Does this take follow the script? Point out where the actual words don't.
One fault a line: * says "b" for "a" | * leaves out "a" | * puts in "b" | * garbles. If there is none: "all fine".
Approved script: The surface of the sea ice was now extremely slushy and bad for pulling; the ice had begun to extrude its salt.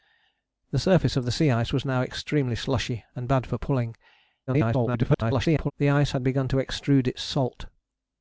* garbles